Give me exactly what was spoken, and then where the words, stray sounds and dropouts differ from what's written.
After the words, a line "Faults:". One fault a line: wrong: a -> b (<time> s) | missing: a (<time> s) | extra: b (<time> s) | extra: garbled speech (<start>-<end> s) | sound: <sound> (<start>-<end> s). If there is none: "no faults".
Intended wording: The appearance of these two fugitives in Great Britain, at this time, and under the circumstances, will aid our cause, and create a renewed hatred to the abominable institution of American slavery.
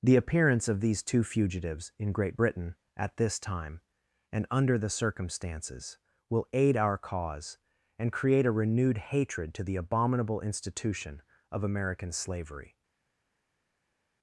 The appearance of these two fugitives in Great Britain, at this time, and under the circumstances, will aid our cause, and create a renewed hatred to the abominable institution of American slavery.
Faults:
no faults